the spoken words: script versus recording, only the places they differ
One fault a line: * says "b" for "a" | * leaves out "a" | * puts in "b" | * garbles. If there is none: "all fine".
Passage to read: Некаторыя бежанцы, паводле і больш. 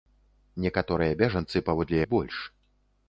all fine